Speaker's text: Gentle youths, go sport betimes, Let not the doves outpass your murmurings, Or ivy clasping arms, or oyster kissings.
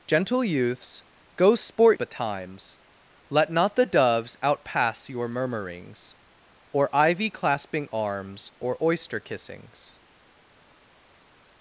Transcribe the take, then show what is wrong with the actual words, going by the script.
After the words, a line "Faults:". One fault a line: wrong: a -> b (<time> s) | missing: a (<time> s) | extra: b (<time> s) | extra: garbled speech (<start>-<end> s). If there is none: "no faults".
Gentle youths, go sport betimes, Let not the doves outpass your murmurings, Or ivy clasping arms, or oyster kissings.
Faults:
no faults